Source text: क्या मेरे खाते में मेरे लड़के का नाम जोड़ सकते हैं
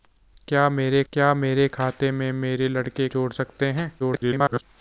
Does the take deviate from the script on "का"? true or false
true